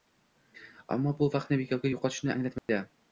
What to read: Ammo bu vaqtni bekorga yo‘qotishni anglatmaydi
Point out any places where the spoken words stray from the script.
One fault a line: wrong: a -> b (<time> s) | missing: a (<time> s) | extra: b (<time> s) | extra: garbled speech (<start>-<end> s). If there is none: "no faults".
no faults